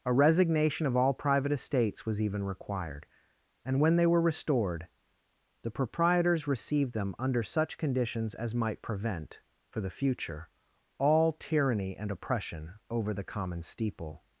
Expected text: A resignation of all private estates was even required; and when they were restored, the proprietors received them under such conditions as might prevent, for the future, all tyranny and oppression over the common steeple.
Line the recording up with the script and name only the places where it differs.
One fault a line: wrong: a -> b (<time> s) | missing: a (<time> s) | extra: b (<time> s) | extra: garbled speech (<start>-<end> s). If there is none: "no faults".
no faults